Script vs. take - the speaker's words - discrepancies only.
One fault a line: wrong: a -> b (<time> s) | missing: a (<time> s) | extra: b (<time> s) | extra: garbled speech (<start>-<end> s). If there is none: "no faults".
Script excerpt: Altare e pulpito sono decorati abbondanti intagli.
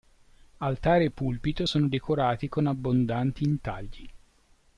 extra: con (2.5 s)